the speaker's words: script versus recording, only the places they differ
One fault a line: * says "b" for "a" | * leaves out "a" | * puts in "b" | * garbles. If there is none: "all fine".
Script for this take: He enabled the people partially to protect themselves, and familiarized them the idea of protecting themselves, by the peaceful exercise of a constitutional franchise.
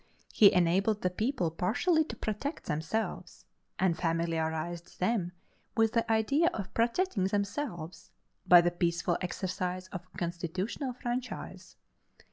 * puts in "with"